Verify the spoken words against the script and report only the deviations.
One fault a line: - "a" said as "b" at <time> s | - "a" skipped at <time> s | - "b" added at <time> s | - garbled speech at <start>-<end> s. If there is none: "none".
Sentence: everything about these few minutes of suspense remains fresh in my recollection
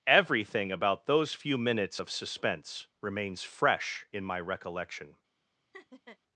- "these" said as "those" at 1.1 s